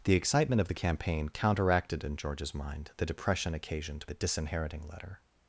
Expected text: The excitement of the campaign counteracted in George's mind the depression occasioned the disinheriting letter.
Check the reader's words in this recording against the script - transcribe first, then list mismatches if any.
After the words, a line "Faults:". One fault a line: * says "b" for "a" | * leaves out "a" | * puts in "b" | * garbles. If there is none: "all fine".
The excitement of the campaign counteracted in George's mind the depression occasioned the disinheriting letter.
Faults:
all fine